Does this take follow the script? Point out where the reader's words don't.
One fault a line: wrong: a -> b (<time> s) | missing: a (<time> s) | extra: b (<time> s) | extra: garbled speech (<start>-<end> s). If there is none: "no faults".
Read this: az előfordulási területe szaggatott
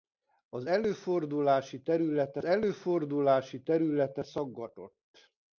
extra: előfordulási területe (2.4 s)